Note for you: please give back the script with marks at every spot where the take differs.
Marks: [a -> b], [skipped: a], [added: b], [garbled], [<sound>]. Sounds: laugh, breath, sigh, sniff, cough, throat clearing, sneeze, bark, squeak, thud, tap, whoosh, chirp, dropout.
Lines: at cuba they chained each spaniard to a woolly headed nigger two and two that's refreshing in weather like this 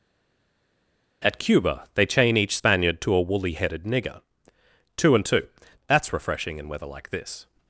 at cuba they [chained -> chain] each spaniard to a woolly headed nigger two and two that's refreshing in weather like this